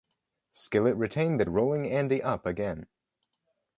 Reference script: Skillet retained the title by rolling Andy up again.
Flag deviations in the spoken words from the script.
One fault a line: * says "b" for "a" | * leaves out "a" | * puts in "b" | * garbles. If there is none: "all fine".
* leaves out "title by"